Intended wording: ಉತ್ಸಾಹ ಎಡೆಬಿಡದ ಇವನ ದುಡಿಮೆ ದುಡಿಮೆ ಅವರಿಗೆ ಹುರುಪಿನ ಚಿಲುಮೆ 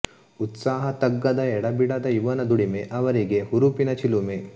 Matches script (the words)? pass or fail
fail